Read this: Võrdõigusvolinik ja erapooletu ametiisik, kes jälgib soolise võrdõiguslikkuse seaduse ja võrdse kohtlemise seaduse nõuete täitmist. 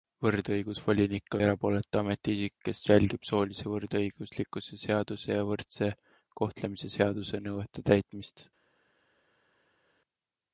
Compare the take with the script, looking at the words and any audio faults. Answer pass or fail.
pass